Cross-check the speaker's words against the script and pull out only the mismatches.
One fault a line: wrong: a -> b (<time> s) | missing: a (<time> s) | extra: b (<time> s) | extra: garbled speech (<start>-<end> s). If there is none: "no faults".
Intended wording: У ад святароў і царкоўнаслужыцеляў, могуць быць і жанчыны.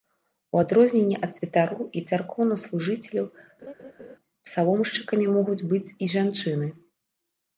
extra: адрозненне (0.6 s)
extra: псаломшчыкамі (4.5 s)